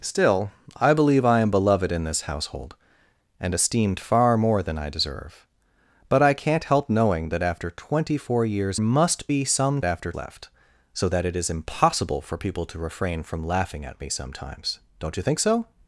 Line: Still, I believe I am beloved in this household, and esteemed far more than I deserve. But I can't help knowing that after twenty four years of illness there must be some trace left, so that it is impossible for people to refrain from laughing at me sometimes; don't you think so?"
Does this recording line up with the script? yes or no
no